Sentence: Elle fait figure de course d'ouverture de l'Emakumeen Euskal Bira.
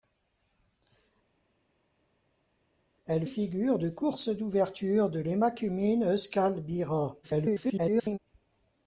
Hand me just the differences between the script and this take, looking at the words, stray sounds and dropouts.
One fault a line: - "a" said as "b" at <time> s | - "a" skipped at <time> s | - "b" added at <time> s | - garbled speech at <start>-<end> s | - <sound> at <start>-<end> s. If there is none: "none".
- "fait" skipped at 3.3 s
- garbled speech at 7.2-8.2 s